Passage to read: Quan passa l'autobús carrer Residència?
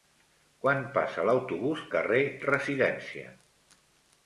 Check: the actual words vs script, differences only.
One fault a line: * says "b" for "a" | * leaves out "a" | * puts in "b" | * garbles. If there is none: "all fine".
all fine